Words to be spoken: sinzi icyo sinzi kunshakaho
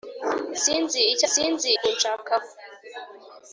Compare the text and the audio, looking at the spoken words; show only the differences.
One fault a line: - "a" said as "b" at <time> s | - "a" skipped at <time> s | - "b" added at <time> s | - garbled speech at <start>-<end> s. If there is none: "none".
none